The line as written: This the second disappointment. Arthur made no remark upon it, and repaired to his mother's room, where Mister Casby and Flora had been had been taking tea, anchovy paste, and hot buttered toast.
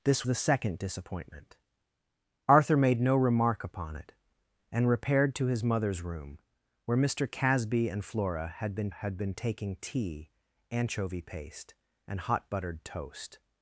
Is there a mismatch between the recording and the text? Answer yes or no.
no